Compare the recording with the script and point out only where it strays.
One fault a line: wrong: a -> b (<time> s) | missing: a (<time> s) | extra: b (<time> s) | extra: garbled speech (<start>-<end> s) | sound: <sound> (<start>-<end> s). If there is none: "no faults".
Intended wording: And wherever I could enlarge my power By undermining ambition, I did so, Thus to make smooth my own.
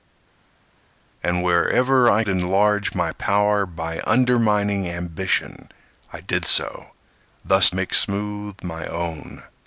missing: could (2.2 s)
missing: to (7.7 s)